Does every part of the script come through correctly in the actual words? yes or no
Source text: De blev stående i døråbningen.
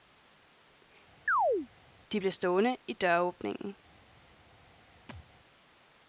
yes